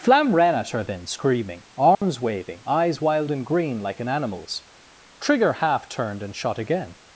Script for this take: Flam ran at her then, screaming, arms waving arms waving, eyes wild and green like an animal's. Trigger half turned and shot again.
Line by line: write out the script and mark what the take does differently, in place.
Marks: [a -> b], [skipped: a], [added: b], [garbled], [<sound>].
Flam ran at her then, screaming, arms [dropout] waving [skipped: arms waving,] eyes wild and green like an animal's. Trigger half turned and shot again.